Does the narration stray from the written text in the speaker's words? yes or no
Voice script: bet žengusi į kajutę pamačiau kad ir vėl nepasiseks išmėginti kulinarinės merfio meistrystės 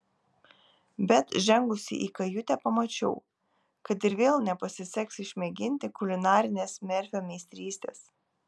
no